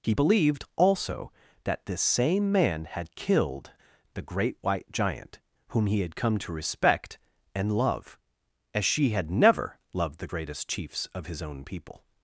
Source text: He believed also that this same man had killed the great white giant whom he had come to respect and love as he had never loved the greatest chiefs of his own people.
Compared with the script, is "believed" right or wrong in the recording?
right